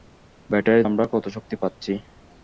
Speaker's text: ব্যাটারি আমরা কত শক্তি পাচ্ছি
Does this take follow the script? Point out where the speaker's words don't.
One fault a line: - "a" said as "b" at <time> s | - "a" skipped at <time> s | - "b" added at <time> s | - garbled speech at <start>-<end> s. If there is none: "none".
none